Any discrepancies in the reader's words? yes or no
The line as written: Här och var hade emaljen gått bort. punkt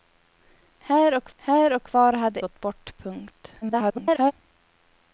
yes